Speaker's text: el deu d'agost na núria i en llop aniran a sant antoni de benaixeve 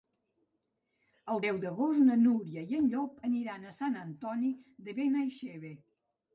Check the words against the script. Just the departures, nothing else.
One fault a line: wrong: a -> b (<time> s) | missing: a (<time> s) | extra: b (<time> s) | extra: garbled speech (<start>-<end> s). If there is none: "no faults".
no faults